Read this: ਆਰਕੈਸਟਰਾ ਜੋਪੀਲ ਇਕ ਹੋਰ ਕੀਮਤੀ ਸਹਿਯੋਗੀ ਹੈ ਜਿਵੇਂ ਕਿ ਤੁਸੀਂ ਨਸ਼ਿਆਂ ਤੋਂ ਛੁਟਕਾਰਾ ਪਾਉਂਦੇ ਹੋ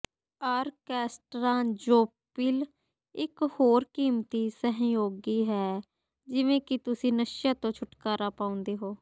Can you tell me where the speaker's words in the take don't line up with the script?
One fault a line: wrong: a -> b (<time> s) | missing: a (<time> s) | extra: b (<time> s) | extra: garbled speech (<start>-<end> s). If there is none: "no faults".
no faults